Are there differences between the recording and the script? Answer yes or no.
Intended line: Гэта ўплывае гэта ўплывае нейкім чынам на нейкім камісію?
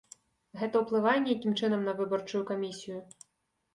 yes